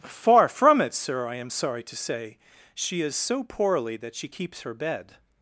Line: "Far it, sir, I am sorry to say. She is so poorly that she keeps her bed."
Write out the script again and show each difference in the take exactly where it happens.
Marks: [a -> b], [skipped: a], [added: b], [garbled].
"Far [added: from] it, sir, I am sorry to say. She is so poorly that she keeps her bed."